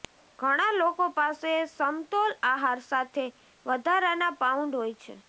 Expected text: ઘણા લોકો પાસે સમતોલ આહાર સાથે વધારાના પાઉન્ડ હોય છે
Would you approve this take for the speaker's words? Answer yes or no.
yes